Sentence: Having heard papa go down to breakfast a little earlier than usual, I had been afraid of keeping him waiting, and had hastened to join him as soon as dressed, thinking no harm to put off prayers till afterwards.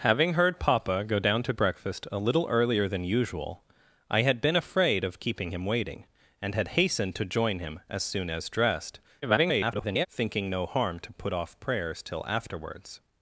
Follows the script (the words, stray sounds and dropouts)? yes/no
no